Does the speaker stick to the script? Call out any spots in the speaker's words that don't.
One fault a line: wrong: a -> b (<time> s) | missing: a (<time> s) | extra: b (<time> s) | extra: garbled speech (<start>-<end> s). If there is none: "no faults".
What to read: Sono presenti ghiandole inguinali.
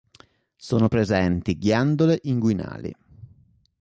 no faults